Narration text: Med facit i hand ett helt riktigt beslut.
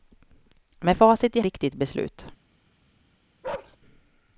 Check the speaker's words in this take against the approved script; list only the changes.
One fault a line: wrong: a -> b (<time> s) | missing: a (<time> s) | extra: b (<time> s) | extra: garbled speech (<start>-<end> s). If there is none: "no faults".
missing: hand ett helt (1.4 s)